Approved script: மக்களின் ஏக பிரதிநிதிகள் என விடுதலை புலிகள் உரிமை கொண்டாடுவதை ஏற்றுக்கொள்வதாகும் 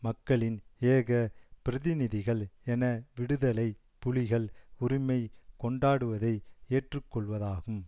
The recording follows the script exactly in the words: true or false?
true